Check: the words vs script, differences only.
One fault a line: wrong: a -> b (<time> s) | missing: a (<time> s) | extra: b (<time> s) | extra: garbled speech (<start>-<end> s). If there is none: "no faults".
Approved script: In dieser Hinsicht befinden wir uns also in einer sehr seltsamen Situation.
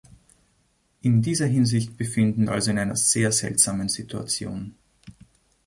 missing: wir uns (2.5 s)